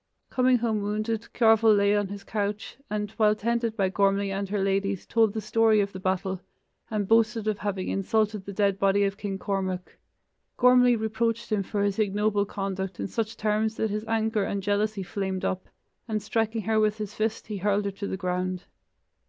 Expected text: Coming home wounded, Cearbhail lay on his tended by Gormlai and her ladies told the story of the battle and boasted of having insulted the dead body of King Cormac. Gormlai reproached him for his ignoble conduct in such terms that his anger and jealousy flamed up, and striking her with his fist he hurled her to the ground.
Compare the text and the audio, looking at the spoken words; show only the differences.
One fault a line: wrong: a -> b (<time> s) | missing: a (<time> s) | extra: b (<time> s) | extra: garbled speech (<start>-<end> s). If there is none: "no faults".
extra: couch and while (2.2 s)